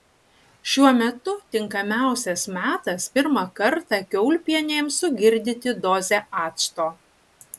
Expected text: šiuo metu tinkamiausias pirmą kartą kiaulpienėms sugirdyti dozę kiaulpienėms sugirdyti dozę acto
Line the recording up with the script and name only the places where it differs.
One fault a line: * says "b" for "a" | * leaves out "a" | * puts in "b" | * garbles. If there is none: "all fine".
* puts in "metas"
* leaves out "kiaulpienėms sugirdyti dozę"